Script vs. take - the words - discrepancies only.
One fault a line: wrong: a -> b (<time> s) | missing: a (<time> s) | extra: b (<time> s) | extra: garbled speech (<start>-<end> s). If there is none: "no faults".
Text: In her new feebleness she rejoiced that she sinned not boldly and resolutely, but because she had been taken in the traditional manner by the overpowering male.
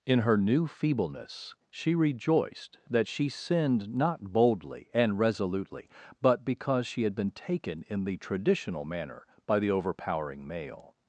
no faults